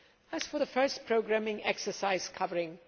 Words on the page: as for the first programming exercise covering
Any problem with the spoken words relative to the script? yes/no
no